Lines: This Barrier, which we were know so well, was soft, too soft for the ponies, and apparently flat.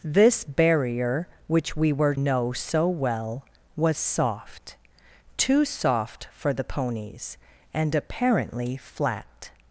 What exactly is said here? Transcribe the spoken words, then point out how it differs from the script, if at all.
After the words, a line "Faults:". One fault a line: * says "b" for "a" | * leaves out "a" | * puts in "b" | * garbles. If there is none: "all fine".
This Barrier, which we were know so well, was soft, too soft for the ponies, and apparently flat.
Faults:
all fine